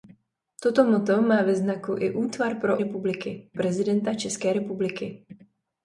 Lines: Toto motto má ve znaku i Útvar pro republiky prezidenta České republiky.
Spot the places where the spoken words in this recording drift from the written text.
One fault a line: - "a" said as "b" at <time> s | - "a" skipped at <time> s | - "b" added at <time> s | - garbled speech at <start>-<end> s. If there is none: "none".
none